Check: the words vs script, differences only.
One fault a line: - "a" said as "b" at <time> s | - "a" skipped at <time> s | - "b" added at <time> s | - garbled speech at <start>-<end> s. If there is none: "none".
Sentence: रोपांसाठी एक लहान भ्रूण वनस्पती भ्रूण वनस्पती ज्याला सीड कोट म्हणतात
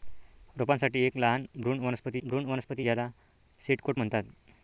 none